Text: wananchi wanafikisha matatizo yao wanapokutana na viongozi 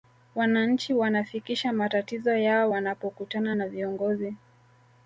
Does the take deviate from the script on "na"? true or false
false